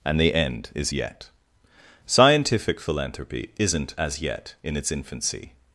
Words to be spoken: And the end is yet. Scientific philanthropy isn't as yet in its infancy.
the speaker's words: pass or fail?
pass